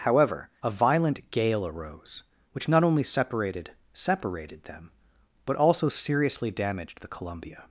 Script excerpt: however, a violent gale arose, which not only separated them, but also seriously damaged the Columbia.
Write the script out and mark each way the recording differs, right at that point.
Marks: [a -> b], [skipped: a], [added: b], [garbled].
however, a violent gale arose, which not only separated [added: separated] them, but also seriously damaged the Columbia.